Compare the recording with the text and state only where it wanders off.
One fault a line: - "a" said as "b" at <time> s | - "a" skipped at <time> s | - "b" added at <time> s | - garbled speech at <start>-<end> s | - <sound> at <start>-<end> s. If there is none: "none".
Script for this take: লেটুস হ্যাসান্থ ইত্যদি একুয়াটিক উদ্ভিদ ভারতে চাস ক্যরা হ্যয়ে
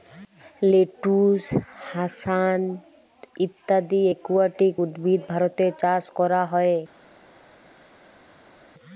none